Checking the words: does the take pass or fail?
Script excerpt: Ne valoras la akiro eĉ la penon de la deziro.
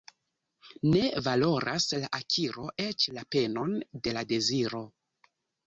pass